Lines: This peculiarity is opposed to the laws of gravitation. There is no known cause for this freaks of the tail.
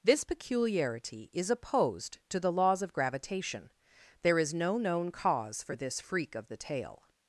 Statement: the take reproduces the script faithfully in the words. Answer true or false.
false